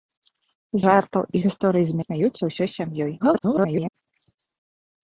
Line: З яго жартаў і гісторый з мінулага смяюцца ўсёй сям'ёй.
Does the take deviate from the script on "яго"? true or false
true